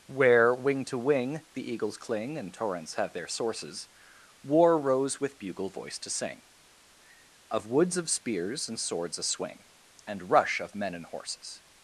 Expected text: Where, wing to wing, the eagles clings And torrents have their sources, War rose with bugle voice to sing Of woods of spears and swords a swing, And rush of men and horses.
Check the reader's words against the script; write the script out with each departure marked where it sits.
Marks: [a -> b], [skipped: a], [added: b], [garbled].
Where, wing to wing, the eagles [clings -> cling] And torrents have their sources, War rose with bugle voice to sing Of woods of spears and swords a swing, And rush of men and horses.